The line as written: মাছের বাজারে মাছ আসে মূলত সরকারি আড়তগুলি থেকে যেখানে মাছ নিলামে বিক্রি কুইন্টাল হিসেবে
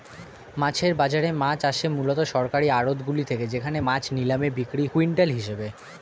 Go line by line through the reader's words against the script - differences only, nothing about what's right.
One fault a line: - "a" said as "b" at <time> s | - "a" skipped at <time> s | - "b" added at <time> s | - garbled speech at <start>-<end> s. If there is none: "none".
none